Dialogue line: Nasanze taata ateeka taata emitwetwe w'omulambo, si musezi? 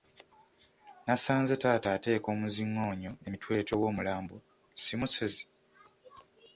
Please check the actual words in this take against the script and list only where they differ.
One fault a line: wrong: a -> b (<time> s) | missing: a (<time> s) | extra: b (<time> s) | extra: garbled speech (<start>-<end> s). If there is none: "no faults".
wrong: taata -> omuzingoonyo (2.3 s)